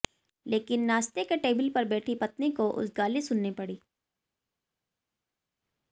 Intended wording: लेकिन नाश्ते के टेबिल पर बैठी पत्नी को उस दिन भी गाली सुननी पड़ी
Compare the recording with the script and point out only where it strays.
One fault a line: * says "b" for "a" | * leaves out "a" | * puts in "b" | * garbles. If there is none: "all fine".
* leaves out "दिन भी"